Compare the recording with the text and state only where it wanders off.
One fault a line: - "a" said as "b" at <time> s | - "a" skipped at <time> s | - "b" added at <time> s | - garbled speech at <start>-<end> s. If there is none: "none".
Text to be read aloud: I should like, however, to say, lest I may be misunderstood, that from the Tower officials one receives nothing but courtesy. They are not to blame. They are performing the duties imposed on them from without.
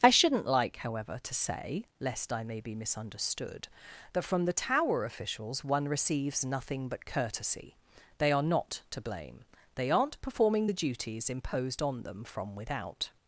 - "should" said as "shouldn't" at 0.1 s
- "are" said as "aren't" at 9.9 s